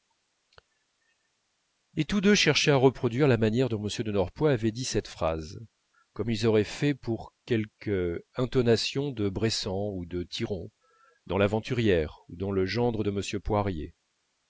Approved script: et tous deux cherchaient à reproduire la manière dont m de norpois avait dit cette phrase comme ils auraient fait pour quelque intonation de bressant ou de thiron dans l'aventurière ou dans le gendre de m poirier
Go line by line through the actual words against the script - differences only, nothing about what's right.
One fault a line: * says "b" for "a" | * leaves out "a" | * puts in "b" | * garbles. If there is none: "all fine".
all fine